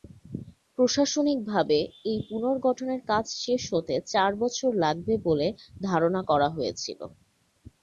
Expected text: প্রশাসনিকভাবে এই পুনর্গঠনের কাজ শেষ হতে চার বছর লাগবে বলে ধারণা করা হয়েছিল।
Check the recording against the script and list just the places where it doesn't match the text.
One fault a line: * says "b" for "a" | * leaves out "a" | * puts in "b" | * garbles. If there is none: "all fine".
all fine